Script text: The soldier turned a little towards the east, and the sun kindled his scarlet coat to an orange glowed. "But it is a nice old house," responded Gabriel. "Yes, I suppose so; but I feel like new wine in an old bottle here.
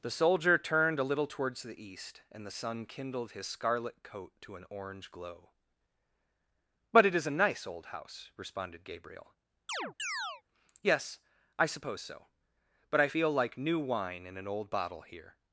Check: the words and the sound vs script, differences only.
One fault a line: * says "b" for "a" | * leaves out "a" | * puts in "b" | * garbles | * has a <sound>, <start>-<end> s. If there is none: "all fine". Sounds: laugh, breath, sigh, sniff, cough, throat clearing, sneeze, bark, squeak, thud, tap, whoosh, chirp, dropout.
* says "glow" for "glowed"
* has a chirp, 9.7-10.4 s